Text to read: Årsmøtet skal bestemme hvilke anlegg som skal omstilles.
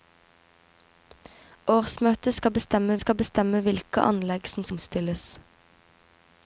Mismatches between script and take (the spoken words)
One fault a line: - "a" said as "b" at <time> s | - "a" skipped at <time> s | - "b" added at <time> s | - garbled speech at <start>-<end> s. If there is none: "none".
- "skal bestemme" added at 3.0 s
- "skal" skipped at 4.6 s